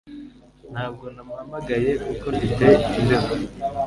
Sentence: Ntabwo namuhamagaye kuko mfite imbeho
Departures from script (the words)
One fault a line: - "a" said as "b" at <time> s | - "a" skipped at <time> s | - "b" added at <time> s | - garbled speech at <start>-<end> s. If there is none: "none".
none